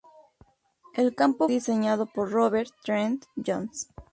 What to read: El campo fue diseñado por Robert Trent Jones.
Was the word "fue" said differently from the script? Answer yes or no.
yes